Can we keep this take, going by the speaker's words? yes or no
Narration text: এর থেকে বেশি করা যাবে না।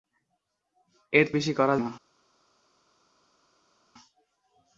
no